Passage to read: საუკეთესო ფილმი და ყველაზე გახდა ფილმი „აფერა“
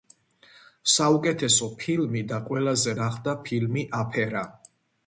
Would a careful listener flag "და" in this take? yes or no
no